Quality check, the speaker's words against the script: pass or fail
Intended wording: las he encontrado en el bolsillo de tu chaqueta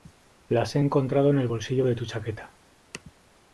pass